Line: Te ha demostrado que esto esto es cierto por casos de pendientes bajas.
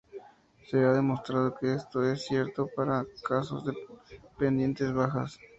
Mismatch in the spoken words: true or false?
true